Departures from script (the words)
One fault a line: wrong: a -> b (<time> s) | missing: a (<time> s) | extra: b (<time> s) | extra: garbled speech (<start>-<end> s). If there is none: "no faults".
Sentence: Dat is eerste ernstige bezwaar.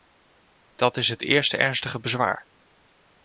extra: het (1.1 s)